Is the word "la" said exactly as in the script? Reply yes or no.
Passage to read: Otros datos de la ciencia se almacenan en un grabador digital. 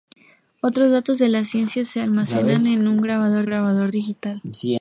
yes